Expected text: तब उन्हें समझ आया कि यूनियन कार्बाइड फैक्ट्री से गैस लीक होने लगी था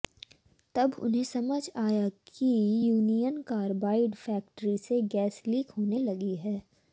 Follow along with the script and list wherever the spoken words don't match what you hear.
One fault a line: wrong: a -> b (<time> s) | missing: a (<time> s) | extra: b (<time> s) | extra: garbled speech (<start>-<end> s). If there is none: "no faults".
wrong: था -> है (6.4 s)